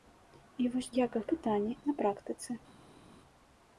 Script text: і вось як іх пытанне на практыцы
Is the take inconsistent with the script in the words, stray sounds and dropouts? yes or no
no